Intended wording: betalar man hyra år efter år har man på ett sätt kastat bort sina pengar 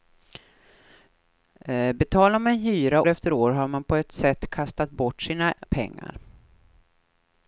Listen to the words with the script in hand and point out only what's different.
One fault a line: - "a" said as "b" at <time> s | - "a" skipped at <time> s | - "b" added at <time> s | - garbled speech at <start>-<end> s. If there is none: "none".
- "år" skipped at 3.0 s